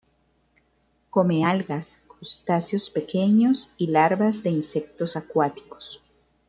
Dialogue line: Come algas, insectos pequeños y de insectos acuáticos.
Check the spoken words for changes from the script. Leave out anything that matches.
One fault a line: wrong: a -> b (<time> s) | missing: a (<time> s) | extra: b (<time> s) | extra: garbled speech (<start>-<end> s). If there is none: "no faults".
wrong: insectos -> crustáceos (2.1 s)
extra: larvas (3.9 s)